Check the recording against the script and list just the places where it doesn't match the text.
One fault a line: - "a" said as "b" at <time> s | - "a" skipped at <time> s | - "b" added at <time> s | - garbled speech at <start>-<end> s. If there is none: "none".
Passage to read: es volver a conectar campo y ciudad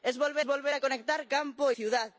- "volver" added at 0.4 s
- "y" skipped at 1.7 s